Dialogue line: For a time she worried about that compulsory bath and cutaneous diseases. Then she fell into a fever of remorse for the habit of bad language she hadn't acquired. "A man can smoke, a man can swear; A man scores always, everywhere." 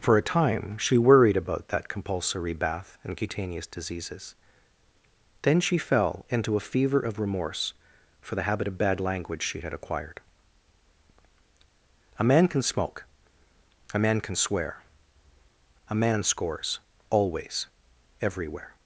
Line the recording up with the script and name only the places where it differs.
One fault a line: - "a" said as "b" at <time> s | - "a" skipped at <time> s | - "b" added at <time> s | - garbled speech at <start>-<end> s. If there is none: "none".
- "hadn't" said as "had" at 9.6 s